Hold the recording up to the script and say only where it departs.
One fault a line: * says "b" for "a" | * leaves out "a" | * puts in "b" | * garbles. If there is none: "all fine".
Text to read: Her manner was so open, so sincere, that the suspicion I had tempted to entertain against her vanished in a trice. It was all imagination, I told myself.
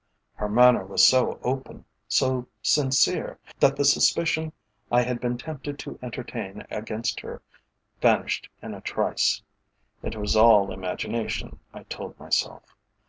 * puts in "been"